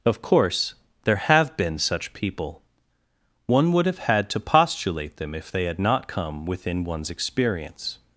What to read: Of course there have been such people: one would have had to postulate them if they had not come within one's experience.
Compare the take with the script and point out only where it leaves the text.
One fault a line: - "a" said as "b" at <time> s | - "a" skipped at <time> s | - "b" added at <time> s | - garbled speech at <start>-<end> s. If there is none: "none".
none